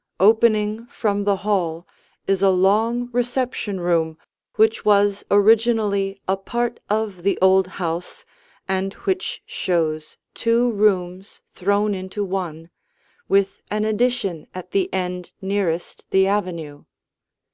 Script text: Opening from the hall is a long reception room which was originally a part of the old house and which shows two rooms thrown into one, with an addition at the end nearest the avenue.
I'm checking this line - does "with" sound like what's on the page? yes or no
yes